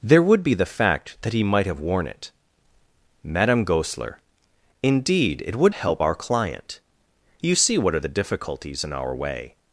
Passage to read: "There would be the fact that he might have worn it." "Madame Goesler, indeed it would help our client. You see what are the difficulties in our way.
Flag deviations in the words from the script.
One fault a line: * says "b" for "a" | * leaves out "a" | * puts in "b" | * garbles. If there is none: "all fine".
all fine